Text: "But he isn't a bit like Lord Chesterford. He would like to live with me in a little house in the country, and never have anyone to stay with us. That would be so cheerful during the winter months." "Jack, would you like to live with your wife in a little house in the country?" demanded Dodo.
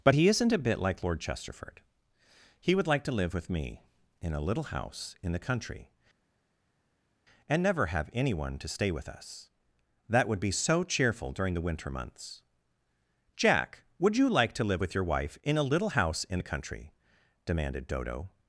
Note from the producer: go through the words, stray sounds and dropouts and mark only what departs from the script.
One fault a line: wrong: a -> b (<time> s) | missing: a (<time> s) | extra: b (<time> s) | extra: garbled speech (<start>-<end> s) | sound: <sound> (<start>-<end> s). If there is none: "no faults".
no faults